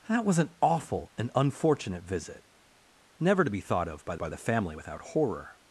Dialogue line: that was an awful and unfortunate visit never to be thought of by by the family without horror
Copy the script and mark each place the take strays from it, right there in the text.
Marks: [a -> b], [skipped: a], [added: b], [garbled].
that was an awful and unfortunate visit never to be thought of by by the family without horror